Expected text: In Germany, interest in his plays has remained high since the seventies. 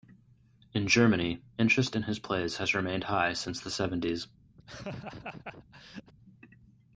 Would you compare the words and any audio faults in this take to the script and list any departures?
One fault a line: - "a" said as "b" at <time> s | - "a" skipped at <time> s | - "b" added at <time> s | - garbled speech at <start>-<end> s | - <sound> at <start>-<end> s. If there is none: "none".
- laugh at 4.6-6.1 s